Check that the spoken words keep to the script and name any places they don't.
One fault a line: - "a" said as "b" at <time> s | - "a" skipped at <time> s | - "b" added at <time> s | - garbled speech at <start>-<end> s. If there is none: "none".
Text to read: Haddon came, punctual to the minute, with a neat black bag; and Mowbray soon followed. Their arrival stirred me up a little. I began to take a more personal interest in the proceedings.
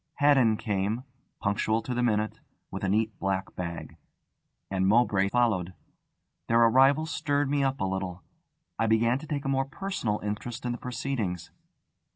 - "soon" skipped at 5.3 s